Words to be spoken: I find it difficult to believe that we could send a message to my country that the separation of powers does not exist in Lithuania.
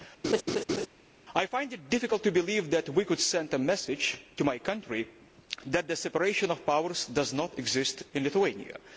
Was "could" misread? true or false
false